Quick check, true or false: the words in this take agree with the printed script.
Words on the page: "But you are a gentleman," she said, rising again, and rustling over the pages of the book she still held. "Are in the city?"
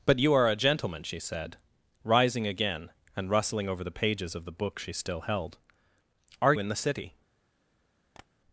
true